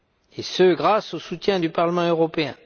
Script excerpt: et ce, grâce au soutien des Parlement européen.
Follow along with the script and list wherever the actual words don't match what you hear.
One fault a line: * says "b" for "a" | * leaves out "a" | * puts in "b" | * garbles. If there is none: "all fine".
* says "du" for "des"